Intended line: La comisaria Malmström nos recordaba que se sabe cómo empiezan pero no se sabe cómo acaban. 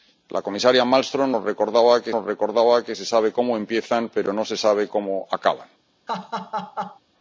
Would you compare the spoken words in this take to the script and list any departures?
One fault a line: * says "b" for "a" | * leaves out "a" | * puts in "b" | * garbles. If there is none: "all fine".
* puts in "nos recordaba que"